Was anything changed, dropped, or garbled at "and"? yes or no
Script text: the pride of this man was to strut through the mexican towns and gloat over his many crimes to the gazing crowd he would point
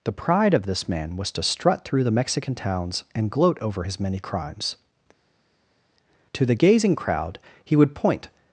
no